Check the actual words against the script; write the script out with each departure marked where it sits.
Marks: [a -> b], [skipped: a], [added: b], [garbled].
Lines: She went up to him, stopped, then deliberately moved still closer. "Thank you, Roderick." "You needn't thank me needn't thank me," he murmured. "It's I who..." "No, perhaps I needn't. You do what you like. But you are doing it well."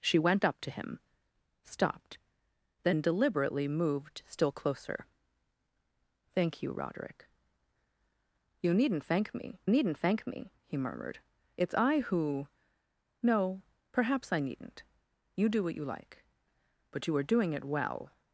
She went up to him, stopped, then deliberately moved still closer. "Thank you, Roderick." "You needn't thank me needn't thank me," he murmured. "It's I who..." "No, perhaps I needn't. You do what you like. But you are doing it well."